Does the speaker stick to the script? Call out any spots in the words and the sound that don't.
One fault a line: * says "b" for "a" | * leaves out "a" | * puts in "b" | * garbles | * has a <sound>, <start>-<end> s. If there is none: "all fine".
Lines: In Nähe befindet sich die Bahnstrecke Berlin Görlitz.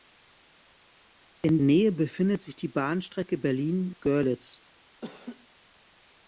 * has a laugh, 5.0-5.5 s